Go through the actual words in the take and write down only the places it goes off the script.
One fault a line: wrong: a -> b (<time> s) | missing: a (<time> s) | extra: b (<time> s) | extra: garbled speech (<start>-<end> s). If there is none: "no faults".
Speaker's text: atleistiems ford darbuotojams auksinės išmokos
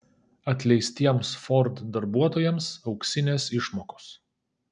no faults